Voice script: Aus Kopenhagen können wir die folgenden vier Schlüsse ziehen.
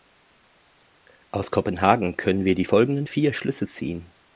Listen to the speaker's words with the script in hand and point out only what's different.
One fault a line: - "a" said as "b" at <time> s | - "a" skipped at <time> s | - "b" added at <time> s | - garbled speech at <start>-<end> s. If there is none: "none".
none